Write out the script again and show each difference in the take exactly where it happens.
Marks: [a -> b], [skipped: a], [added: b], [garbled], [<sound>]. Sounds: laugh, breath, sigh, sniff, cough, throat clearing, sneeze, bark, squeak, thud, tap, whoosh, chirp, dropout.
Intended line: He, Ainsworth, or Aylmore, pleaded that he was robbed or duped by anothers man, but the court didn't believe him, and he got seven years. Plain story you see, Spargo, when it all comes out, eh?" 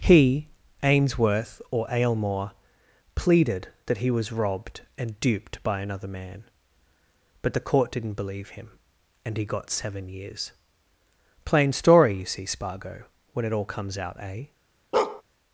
He, Ainsworth, or Aylmore, pleaded that he was robbed [or -> and] duped by [anothers -> another] man, but the court didn't believe him, and he got seven years. Plain story you see, Spargo, when it all comes out, eh?" [bark]